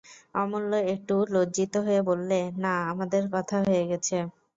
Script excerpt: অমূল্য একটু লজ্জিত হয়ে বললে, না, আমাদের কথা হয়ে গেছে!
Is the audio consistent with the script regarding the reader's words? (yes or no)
yes